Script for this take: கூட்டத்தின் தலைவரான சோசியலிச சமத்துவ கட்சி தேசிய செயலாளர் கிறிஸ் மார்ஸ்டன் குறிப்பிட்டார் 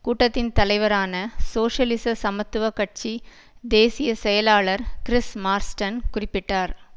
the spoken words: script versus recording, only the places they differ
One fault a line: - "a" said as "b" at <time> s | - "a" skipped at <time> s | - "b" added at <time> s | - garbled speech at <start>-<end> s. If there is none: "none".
none